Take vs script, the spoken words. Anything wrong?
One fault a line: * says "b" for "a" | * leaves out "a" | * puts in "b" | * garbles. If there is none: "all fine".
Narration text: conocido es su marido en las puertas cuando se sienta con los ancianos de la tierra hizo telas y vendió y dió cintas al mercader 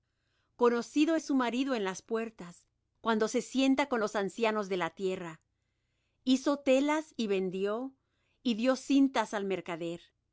all fine